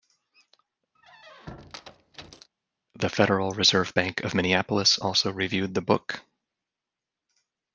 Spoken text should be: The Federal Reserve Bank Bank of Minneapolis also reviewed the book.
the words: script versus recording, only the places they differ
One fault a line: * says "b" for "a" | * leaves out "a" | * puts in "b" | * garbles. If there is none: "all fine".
* leaves out "Bank"